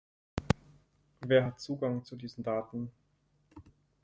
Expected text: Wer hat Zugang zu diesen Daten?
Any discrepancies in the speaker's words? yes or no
no